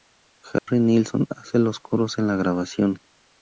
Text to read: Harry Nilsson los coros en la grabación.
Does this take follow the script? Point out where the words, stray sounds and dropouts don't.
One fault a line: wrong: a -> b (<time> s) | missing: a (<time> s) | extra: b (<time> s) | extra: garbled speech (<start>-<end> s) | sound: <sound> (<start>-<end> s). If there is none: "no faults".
sound: dropout (0.6-0.7 s)
extra: hace (1.3 s)